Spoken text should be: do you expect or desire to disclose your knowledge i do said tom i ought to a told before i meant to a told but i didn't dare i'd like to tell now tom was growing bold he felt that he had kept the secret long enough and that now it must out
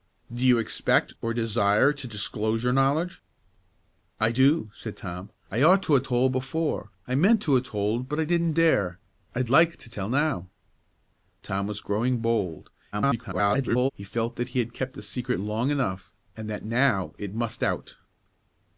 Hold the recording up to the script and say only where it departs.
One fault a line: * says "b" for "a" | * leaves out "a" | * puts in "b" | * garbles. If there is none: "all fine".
* garbles